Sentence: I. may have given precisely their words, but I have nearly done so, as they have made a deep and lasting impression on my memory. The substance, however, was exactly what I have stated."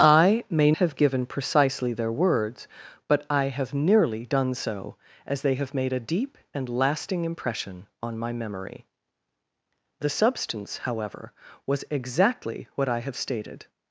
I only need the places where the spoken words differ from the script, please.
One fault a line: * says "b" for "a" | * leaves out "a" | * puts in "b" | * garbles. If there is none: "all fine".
all fine